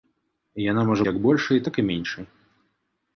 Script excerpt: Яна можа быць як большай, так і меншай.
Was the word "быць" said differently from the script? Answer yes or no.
yes